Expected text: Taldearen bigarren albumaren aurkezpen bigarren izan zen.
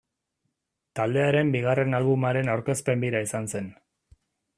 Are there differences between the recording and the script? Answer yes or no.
yes